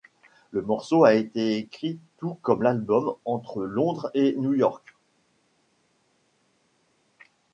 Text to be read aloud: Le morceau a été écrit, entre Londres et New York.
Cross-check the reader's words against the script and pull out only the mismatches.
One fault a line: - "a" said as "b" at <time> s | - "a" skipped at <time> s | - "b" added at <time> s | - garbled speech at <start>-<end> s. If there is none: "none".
- "tout comme l'album" added at 2.2 s